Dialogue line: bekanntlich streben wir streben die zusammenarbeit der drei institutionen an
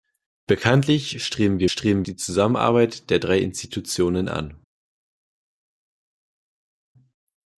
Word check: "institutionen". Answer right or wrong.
right